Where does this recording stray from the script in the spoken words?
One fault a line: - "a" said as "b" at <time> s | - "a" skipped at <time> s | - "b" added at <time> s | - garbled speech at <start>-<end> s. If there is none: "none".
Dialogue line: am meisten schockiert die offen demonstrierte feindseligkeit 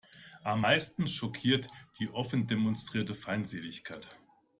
none